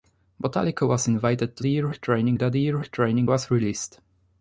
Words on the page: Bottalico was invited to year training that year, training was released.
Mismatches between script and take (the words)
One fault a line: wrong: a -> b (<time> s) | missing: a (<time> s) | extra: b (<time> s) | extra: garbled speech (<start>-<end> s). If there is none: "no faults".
no faults